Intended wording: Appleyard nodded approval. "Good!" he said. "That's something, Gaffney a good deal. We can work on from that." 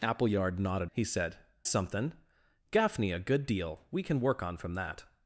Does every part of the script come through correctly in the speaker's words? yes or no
no